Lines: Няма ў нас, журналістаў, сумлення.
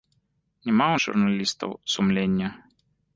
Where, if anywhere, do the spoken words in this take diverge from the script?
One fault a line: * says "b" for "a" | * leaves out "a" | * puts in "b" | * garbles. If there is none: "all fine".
* leaves out "нас"